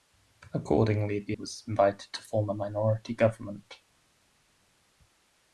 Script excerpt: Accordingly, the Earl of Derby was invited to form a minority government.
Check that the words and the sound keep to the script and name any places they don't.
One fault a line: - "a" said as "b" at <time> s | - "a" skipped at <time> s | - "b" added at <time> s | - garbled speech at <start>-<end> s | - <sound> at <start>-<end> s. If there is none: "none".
- "Earl of Derby" skipped at 1.4 s